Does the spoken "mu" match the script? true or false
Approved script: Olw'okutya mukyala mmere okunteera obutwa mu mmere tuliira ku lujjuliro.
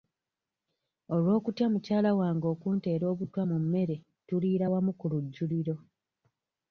true